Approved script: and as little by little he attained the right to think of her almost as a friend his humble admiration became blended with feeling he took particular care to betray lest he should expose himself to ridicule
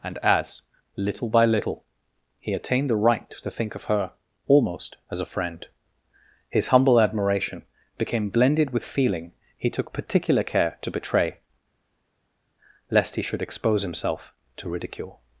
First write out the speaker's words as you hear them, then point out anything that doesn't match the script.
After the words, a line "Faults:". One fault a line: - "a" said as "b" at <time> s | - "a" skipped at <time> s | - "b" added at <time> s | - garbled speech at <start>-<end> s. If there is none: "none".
and as little by little he attained the right to think of her almost as a friend his humble admiration became blended with feeling he took particular care to betray lest he should expose himself to ridicule
Faults:
none